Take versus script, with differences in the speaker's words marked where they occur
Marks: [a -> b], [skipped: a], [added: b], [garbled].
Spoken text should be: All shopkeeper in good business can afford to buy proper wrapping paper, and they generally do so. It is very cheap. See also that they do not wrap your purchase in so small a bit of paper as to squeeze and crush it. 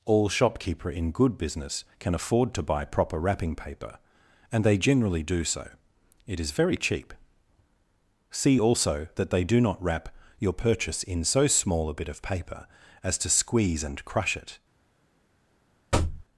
All shopkeeper in good business can afford to buy proper wrapping paper, and they generally do so. It is very cheap. See also that they do not wrap your purchase in so small a bit of paper as to squeeze and crush it.